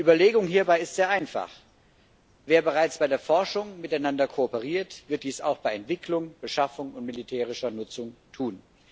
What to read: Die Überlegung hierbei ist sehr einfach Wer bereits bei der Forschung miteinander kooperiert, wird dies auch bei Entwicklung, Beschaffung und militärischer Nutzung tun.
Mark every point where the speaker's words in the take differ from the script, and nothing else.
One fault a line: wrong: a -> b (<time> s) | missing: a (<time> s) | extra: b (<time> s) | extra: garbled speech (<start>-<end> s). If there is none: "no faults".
no faults